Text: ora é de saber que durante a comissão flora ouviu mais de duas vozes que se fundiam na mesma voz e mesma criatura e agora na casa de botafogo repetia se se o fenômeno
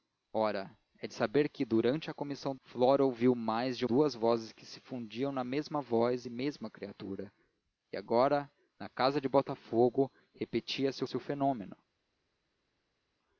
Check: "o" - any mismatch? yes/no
no